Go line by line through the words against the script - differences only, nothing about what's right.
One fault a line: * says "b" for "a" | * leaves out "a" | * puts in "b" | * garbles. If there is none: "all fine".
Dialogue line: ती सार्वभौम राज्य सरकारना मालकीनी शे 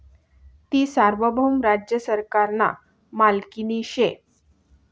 all fine